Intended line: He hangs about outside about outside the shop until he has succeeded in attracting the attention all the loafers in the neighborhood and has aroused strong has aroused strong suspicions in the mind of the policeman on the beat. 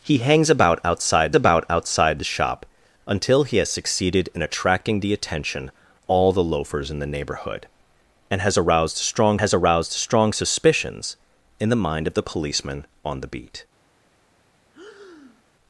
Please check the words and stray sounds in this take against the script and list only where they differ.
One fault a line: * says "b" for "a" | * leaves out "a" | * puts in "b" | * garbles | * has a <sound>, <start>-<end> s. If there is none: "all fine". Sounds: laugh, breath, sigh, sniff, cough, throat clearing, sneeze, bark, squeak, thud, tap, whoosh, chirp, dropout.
* has a breath, 14.7-15.4 s